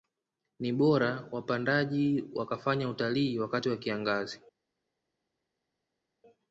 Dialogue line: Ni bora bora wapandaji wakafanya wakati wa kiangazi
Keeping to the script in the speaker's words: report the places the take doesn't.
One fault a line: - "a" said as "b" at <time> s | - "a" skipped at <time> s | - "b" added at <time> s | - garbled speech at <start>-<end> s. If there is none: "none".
- "bora" skipped at 1.3 s
- "utalii" added at 2.9 s